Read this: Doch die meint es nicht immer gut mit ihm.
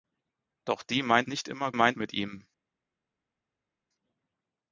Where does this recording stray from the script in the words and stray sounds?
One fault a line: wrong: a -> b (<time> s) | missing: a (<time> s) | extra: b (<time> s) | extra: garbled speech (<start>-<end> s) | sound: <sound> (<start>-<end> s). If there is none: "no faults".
missing: es (1.3 s)
wrong: gut -> meint (1.7 s)